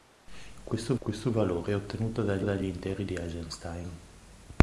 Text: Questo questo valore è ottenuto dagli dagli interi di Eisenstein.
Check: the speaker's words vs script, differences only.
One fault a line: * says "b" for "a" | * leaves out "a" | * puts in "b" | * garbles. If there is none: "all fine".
all fine